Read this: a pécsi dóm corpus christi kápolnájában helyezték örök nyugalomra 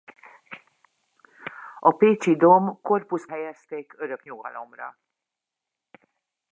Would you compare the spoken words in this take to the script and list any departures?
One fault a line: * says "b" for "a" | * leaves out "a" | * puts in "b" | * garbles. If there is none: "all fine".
* leaves out "christi kápolnájában"